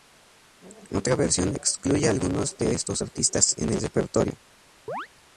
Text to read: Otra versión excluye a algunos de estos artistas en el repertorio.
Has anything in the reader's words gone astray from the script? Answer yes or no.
no